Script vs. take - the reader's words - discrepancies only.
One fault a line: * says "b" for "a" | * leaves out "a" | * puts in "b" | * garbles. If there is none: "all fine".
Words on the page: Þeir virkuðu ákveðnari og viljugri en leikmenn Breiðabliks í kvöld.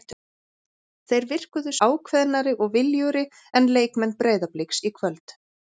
all fine